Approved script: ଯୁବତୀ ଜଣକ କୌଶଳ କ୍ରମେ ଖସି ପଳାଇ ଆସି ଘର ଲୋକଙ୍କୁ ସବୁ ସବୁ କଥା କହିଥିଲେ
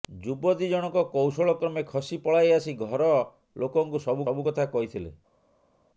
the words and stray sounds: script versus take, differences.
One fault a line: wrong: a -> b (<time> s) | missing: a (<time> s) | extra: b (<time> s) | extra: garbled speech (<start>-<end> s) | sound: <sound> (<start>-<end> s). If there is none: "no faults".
no faults